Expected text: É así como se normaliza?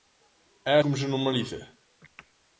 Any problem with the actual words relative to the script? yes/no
yes